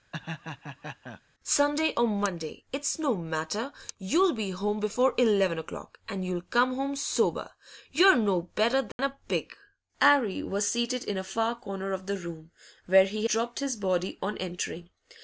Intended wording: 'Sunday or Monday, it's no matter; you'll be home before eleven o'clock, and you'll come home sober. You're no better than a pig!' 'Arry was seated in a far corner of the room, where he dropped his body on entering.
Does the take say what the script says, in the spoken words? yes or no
yes